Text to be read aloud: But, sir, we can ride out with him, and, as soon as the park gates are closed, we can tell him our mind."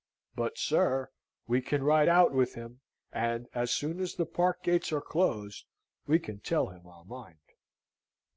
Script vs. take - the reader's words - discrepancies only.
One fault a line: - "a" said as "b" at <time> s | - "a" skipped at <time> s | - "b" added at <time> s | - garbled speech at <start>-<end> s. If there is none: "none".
none